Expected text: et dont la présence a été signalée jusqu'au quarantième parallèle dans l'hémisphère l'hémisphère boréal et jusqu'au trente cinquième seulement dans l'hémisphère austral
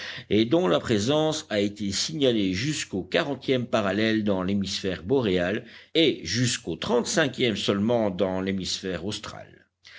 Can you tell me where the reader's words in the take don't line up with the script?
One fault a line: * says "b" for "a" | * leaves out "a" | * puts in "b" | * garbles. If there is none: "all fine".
* leaves out "l'hémisphère"